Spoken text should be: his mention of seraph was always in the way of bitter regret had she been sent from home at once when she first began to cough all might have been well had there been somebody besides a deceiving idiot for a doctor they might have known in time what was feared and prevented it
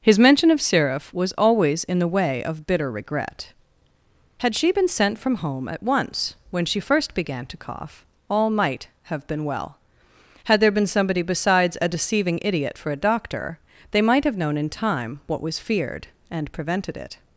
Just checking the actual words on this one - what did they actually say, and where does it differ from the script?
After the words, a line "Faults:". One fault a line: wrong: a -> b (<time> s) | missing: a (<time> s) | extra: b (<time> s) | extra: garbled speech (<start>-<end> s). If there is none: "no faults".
his mention of seraph was always in the way of bitter regret had she been sent from home at once when she first began to cough all might have been well had there been somebody besides a deceiving idiot for a doctor they might have known in time what was feared and prevented it
Faults:
no faults